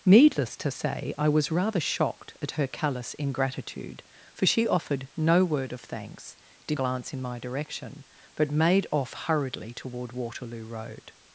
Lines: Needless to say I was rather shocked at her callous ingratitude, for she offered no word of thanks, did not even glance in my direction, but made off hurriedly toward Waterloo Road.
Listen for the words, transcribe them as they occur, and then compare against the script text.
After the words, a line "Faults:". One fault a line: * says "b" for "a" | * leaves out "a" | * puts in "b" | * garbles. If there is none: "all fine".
Needless to say I was rather shocked at her callous ingratitude, for she offered no word of thanks, did glance in my direction, but made off hurriedly toward Waterloo Road.
Faults:
* leaves out "not even"